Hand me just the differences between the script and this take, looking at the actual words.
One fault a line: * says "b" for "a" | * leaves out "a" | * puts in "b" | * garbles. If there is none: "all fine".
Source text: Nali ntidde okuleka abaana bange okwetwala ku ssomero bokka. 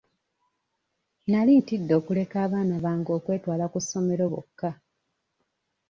all fine